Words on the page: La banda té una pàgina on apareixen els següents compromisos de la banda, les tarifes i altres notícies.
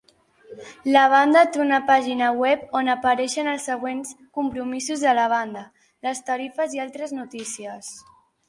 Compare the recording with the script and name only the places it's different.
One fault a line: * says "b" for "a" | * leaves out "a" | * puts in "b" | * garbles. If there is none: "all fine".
* puts in "web"